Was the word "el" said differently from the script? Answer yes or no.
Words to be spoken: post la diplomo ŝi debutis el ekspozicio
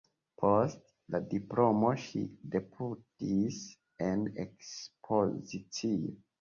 yes